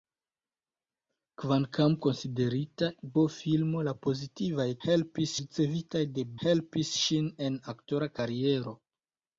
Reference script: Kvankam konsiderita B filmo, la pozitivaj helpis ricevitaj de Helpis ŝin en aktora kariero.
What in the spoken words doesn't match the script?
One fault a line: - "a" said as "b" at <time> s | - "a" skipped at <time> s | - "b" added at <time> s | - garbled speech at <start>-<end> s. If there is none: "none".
none